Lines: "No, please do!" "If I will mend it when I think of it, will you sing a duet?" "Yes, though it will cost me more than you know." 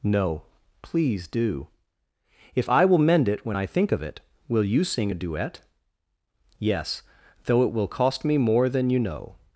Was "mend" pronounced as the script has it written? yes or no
yes